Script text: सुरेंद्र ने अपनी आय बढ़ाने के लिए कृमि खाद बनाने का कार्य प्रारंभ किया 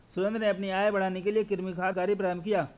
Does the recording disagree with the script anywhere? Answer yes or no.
yes